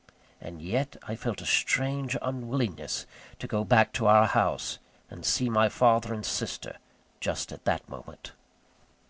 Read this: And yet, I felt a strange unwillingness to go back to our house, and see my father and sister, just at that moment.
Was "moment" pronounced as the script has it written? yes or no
yes